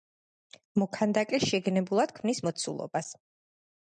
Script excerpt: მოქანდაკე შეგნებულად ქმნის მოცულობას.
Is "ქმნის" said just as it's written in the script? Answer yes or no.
yes